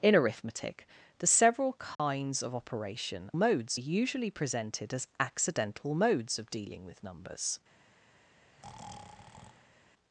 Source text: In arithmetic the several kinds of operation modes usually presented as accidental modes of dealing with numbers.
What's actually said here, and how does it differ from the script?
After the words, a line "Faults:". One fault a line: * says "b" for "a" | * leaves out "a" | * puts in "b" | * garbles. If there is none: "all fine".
In arithmetic the several kinds of operation modes usually presented as accidental modes of dealing with numbers.
Faults:
all fine